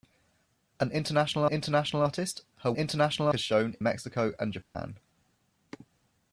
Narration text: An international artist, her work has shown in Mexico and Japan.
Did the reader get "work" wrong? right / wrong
wrong